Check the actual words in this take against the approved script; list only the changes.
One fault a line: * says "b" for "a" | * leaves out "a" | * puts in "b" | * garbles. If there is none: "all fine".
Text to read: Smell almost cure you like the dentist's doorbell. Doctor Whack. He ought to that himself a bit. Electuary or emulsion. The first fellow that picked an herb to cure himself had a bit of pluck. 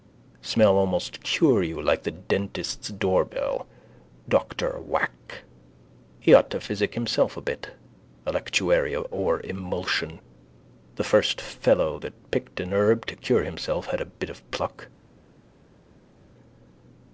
* says "physic" for "that"